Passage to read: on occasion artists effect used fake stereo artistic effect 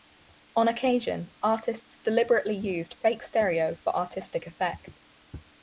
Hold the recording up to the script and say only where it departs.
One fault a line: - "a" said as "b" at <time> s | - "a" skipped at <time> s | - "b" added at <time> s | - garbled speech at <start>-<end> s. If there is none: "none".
- "effect" said as "deliberately" at 2.0 s
- "for" added at 3.7 s